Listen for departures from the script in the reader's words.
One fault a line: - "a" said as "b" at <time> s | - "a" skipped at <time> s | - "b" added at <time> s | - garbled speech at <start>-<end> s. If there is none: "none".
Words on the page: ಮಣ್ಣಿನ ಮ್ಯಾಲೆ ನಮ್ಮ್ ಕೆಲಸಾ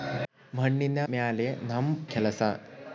none